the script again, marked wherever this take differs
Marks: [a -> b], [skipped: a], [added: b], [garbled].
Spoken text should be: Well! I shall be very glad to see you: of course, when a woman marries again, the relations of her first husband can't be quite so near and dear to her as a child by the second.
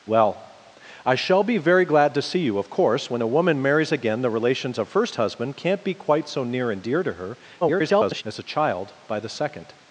Well! I shall be very glad to see you: of course, when a woman marries again, the relations of [skipped: her] first husband can't be quite so near and dear to her [garbled] as a child by the second.